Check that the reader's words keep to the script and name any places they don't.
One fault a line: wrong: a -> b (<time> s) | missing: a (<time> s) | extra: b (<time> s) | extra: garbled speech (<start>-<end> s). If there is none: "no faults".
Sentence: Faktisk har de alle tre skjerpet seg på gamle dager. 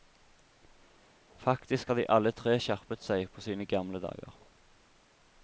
extra: sine (3.5 s)